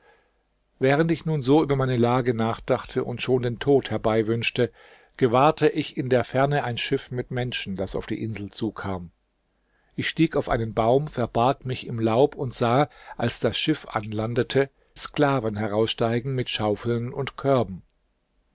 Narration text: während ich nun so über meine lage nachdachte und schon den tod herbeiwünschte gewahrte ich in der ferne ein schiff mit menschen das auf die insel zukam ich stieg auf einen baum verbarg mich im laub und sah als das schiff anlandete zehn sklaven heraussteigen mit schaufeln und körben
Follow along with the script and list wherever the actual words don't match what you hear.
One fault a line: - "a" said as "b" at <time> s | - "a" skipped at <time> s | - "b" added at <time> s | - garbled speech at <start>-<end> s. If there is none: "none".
- "zehn" skipped at 14.7 s